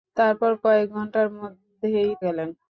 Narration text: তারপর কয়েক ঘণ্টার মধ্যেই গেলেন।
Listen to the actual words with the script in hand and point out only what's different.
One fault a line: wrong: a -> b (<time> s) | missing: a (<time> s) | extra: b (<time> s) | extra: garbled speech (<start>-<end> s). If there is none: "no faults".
no faults